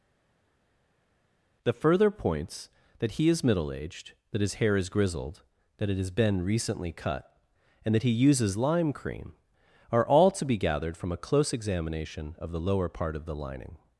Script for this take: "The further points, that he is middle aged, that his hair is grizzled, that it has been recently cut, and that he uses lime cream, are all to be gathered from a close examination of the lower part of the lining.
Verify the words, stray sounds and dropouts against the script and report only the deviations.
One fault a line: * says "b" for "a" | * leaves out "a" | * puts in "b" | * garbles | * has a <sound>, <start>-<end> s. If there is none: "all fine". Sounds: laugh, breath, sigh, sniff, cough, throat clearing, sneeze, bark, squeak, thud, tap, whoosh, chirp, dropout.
all fine